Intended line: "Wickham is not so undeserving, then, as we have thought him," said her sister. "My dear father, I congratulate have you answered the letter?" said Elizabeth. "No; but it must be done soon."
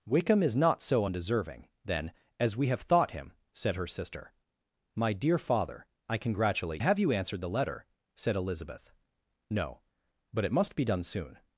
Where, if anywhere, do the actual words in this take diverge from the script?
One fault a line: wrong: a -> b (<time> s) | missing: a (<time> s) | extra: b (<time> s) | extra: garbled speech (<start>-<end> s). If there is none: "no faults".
no faults